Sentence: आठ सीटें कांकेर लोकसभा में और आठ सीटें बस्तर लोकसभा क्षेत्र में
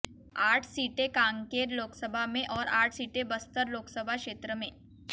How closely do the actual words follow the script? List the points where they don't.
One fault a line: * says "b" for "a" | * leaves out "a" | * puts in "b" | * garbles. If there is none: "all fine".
all fine